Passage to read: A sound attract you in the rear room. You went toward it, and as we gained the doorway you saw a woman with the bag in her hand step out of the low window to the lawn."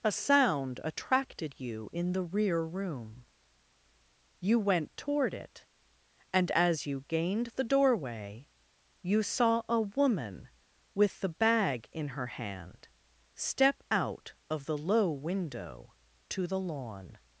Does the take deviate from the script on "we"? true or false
true